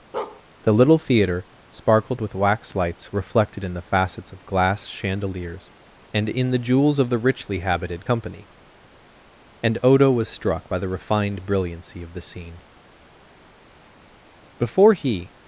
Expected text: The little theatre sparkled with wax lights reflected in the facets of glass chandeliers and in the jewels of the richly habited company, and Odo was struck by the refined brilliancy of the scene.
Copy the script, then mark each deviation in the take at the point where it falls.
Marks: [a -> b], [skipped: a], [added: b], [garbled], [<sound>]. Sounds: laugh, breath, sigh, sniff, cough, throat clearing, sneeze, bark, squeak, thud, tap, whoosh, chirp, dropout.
[bark] The little theatre sparkled with wax lights reflected in the facets of glass chandeliers and in the jewels of the richly habited company, and Odo was struck by the refined brilliancy of the scene. [added: Before he]